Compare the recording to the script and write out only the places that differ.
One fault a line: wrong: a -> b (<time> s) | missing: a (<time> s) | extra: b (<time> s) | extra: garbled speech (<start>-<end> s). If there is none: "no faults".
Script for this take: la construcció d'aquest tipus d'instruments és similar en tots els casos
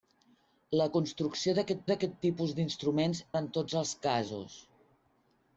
extra: d'aquest (1.9 s)
missing: és similar (3.2 s)